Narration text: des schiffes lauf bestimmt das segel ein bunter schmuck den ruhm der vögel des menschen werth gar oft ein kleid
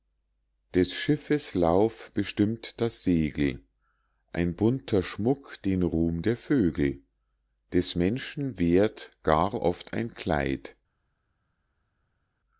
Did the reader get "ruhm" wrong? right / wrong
right